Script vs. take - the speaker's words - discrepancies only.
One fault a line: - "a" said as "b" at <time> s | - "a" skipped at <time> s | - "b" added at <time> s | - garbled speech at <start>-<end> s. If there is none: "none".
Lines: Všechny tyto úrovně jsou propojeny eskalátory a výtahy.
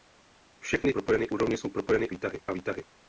- "tyto" said as "propojeny" at 0.9 s
- "eskalátory" said as "výtahy" at 2.1 s